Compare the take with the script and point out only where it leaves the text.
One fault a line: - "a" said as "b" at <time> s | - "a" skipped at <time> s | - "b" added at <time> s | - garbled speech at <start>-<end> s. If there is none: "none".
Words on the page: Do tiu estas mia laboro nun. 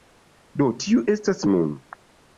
- "mia laboro" skipped at 1.4 s